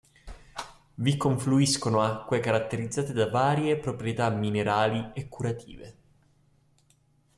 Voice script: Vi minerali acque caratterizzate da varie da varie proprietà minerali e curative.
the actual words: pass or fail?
fail